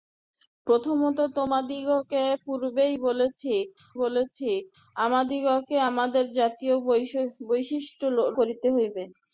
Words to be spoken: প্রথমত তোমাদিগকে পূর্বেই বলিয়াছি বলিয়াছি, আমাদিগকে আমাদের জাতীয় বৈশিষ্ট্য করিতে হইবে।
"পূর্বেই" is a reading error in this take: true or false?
false